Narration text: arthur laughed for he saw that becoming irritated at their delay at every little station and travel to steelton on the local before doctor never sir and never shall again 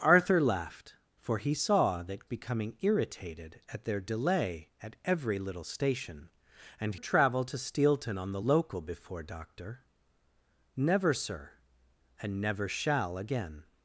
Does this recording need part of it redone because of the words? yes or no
no